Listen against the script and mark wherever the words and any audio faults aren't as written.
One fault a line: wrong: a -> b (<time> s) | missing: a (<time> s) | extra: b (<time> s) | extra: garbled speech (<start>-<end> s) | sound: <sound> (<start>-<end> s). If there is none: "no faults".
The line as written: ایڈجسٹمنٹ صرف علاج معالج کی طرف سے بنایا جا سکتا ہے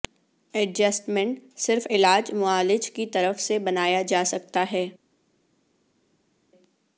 no faults